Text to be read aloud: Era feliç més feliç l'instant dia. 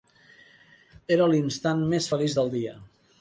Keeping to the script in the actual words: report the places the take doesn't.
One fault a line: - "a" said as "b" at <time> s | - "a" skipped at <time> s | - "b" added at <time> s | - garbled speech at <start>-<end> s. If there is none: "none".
- "feliç" said as "l'instant" at 1.3 s
- "l'instant" said as "del" at 2.4 s